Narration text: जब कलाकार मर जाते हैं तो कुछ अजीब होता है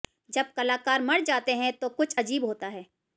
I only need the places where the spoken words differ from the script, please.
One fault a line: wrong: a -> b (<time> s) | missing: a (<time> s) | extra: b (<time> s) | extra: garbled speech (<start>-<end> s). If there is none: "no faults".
no faults